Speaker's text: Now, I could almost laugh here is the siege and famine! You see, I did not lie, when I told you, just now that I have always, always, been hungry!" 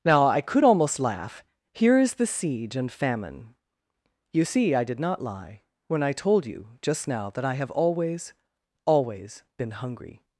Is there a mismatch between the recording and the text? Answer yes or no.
no